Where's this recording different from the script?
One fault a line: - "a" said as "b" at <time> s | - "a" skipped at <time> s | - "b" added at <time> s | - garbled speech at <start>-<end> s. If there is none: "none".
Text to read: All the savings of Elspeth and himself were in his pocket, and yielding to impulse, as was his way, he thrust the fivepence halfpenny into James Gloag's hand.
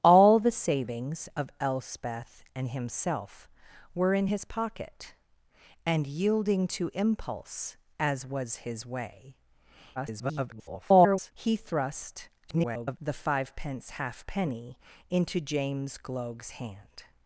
- garbled speech at 10.0-11.3 s
- garbled speech at 12.5-13.0 s